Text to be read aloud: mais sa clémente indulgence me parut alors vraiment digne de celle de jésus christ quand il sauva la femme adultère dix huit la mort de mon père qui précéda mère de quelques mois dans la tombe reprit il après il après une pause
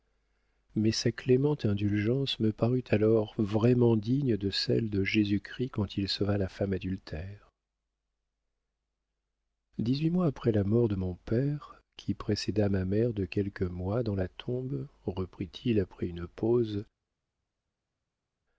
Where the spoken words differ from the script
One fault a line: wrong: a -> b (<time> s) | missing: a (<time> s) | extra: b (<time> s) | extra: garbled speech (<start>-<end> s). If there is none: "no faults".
extra: mois après (10.1 s)
extra: ma (12.7 s)
missing: il après (16.1 s)